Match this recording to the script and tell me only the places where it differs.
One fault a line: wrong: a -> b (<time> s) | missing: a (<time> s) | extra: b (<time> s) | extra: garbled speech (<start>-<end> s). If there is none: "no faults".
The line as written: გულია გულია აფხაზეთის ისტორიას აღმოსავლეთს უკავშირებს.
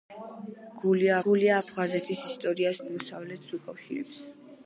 no faults